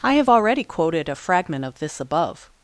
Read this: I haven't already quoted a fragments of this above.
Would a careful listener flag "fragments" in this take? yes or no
yes